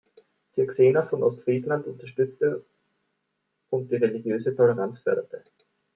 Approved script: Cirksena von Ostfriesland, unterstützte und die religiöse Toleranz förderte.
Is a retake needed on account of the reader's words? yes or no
no